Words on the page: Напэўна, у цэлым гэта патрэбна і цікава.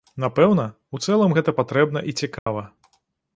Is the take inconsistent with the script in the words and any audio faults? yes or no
yes